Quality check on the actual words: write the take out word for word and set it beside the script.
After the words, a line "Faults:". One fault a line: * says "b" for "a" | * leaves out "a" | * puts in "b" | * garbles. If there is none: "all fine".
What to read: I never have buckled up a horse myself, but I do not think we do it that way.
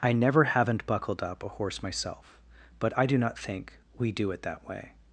I never haven't buckled up a horse myself, but I do not think we do it that way.
Faults:
* says "haven't" for "have"